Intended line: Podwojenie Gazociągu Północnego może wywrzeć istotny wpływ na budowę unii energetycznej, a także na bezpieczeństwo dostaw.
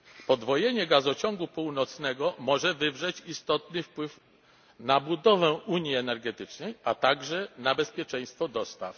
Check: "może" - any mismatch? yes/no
no